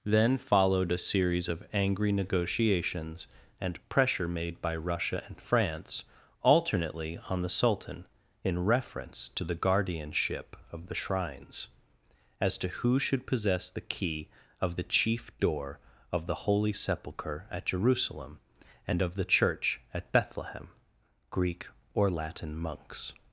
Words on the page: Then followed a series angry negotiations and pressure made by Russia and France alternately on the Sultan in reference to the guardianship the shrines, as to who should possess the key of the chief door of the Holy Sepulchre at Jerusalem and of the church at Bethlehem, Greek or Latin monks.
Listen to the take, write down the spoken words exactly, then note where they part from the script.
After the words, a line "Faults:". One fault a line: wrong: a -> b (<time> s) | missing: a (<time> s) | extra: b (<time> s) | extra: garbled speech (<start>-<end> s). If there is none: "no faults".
Then followed a series of angry negotiations and pressure made by Russia and France alternately on the Sultan in reference to the guardianship of the shrines, as to who should possess the key of the chief door of the Holy Sepulchre at Jerusalem and of the church at Bethlehem, Greek or Latin monks.
Faults:
extra: of (1.5 s)
extra: of (10.7 s)